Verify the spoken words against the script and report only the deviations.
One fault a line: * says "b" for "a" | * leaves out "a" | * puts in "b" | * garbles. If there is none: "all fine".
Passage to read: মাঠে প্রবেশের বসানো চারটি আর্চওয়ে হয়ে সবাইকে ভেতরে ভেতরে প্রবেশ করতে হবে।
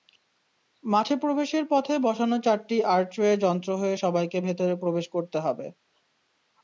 * puts in "পথে"
* puts in "যন্ত্র"
* leaves out "ভেতরে"